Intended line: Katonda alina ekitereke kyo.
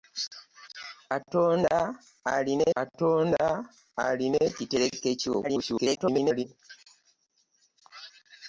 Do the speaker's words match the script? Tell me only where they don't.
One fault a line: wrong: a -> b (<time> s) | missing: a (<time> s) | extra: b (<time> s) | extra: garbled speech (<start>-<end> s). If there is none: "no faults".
extra: katonda alina (2.7 s)
extra: garbled speech (5.4-6.4 s)